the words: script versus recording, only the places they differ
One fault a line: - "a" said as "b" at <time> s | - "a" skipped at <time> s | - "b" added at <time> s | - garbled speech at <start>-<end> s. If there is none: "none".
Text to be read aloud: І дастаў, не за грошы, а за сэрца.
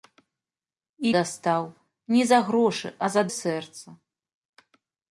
none